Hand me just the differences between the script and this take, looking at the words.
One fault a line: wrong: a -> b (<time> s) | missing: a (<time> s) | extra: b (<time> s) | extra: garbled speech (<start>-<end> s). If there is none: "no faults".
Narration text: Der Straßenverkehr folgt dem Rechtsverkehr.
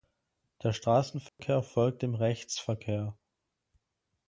no faults